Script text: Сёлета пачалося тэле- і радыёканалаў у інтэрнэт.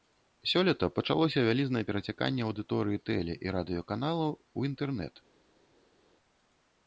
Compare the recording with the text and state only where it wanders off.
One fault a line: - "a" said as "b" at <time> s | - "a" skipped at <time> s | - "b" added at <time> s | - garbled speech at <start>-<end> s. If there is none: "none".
- "вялізнае перацяканне аўдыторыі" added at 1.5 s